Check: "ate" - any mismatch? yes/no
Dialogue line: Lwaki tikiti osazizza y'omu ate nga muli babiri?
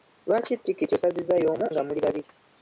yes